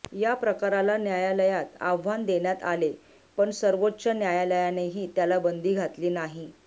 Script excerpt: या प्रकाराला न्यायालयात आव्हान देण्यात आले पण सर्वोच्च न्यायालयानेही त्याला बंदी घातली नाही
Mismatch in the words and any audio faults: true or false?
false